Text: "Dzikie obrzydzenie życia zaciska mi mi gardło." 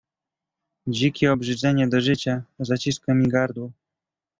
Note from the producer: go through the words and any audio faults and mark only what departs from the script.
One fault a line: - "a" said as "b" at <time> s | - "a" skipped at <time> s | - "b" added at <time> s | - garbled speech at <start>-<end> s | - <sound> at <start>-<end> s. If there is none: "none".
- "do" added at 1.9 s
- "mi" skipped at 3.3 s